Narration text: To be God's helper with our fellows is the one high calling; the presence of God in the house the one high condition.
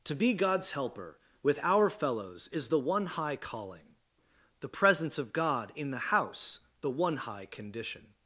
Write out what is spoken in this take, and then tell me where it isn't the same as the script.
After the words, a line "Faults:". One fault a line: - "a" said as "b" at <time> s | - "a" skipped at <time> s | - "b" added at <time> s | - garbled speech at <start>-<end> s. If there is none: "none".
To be God's helper with our fellows is the one high calling; the presence of God in the house the one high condition.
Faults:
none